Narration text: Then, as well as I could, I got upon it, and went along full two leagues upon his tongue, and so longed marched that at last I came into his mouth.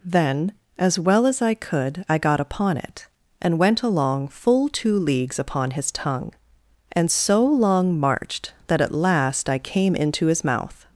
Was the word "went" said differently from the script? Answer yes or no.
no